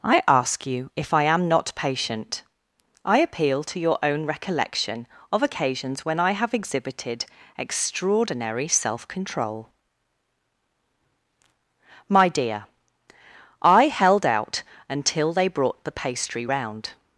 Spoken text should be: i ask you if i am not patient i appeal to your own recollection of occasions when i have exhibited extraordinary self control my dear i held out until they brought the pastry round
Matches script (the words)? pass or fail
pass